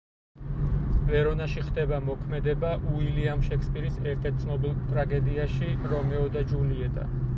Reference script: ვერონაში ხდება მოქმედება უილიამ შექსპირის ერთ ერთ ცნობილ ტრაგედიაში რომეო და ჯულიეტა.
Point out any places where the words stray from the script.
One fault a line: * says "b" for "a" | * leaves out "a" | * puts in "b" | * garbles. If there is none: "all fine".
all fine